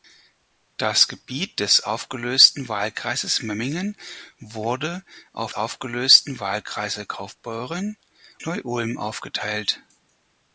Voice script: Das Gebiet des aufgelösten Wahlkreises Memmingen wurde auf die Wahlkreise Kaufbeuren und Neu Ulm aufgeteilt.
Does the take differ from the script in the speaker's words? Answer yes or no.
yes